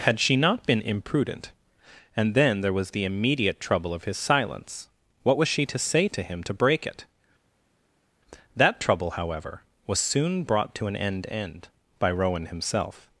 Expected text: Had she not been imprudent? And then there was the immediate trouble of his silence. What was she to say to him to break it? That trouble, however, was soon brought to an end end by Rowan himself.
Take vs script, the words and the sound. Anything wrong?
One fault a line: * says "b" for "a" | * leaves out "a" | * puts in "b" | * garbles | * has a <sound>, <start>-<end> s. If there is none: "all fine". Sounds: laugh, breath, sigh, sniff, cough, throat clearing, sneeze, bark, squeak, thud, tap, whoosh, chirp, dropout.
all fine